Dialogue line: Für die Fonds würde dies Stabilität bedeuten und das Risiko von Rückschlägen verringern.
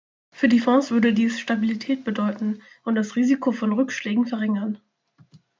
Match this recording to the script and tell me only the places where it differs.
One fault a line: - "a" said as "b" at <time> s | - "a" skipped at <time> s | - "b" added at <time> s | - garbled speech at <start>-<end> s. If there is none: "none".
none